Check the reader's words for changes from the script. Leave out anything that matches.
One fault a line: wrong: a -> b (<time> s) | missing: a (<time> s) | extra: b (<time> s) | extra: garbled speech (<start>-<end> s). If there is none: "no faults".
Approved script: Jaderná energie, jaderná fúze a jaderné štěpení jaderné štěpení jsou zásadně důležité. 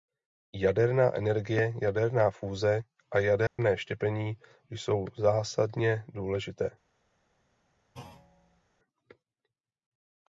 missing: jaderné štěpení (4.4 s)